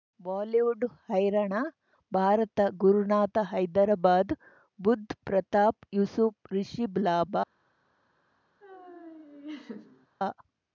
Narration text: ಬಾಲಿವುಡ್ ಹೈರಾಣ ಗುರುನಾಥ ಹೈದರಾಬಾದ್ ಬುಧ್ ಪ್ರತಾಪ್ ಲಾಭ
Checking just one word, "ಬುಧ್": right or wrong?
right